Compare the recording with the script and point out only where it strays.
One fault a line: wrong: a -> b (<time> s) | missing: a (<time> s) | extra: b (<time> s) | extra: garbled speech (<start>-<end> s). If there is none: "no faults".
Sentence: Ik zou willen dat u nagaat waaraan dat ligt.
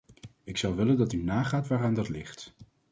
no faults